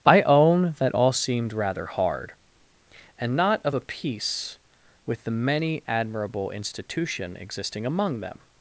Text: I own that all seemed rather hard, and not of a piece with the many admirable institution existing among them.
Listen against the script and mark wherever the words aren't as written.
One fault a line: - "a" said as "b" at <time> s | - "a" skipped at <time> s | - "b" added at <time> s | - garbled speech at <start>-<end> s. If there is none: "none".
none